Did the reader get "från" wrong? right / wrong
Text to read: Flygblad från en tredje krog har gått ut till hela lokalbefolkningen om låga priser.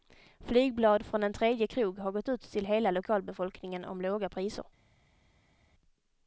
right